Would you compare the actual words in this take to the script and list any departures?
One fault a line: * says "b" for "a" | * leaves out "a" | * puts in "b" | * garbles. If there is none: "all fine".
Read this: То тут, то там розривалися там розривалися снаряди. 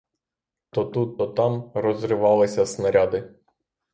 * leaves out "там розривалися"